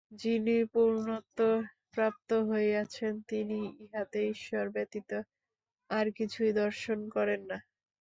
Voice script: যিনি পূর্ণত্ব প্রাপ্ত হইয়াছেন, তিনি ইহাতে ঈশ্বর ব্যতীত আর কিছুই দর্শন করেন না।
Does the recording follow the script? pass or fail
pass